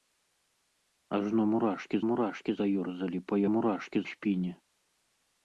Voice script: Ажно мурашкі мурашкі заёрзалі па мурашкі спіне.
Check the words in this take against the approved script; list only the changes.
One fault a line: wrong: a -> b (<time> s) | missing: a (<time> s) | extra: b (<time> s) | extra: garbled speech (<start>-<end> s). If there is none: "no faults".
no faults